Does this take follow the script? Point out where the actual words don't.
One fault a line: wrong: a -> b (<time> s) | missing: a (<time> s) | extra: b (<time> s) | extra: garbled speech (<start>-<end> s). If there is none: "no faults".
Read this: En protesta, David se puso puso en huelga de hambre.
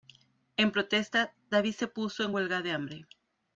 missing: puso (2.2 s)